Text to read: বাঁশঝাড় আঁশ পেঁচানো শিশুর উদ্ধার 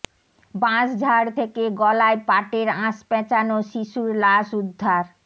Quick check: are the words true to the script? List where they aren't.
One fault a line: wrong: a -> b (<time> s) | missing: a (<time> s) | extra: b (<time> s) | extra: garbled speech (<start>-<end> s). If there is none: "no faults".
extra: থেকে গলায় পাটের (1.4 s)
extra: লাশ (4.2 s)